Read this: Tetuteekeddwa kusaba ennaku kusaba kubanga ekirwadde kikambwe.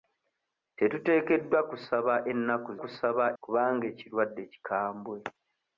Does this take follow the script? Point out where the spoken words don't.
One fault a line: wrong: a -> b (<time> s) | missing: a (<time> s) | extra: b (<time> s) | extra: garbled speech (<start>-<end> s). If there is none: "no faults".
no faults